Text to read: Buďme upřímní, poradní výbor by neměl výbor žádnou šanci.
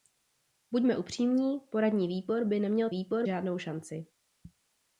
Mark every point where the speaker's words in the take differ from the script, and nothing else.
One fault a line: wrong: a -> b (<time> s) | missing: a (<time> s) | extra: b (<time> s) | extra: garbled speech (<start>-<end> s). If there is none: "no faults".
no faults